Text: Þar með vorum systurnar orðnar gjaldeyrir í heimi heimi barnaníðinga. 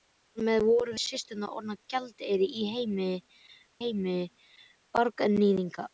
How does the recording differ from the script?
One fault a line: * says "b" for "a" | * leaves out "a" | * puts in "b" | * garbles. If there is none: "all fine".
all fine